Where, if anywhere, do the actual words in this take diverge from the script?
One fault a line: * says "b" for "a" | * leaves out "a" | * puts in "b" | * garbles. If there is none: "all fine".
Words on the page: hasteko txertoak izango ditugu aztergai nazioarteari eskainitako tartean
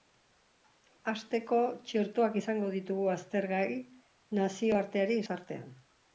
* leaves out "eskainitako"